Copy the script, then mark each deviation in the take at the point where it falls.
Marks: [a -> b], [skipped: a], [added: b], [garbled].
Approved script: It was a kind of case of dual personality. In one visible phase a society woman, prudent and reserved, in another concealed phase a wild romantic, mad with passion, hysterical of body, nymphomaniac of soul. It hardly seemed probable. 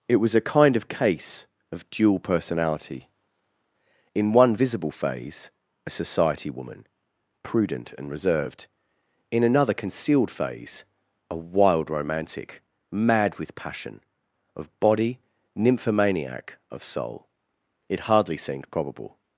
It was a kind of case of dual personality. In one visible phase a society woman, prudent and reserved, in another concealed phase a wild romantic, mad with passion, [skipped: hysterical] of body, nymphomaniac of soul. It hardly seemed probable.